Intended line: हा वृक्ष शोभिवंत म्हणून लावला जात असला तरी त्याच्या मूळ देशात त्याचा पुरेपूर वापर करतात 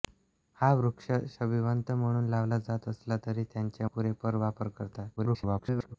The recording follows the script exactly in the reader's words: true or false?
false